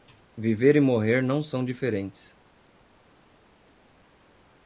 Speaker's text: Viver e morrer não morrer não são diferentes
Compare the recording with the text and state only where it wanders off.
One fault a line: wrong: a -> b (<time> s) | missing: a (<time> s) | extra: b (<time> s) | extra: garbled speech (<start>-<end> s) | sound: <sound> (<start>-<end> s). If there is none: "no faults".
missing: morrer não (1.4 s)